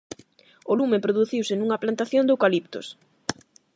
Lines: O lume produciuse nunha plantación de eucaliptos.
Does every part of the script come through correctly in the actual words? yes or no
yes